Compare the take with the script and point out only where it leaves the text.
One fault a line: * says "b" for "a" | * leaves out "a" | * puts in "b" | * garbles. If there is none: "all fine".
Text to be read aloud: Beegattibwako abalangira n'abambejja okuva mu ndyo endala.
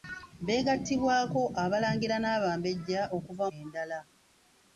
* leaves out "mu ndyo"